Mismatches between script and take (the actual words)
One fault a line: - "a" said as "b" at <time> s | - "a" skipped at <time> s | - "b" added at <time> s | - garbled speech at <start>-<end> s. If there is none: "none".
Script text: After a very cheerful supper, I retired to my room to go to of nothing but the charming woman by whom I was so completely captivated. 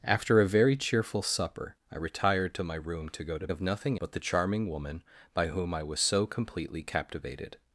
none